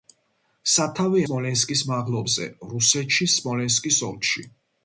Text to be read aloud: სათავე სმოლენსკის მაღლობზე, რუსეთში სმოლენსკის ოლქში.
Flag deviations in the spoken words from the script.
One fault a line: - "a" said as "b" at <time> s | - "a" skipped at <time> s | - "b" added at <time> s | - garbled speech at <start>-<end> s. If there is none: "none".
none